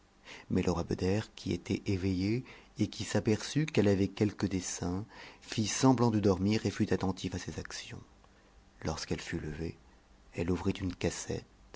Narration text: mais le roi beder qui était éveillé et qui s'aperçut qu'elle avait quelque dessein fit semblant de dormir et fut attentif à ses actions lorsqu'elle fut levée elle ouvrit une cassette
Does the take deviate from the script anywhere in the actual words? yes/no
no